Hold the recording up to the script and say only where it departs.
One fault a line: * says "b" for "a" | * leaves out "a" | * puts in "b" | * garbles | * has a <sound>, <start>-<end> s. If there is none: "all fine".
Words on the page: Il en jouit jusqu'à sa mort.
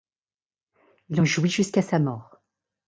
all fine